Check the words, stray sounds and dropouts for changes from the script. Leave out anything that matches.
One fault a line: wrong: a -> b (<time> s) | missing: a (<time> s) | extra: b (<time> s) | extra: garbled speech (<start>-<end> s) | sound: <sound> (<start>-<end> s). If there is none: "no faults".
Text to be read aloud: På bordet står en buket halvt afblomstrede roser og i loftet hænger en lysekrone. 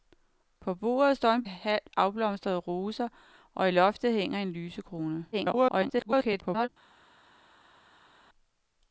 missing: buket (1.4 s)
extra: garbled speech (5.3-6.7 s)